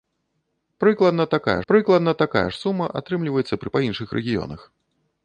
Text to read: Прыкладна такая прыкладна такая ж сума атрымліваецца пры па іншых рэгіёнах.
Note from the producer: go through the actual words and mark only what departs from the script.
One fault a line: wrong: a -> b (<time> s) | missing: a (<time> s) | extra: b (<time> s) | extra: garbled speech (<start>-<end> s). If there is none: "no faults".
no faults